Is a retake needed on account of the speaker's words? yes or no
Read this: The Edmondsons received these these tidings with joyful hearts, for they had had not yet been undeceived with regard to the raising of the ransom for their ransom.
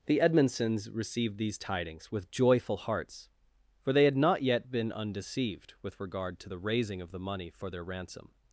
yes